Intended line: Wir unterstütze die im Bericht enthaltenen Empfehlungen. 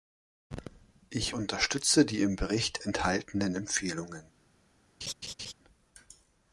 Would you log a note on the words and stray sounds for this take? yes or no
yes